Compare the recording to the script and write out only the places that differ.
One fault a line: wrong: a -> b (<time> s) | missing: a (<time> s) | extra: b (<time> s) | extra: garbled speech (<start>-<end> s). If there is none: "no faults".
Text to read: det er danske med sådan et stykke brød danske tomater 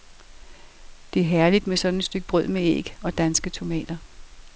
wrong: danske -> herligt (1.2 s)
extra: med æg og (2.5 s)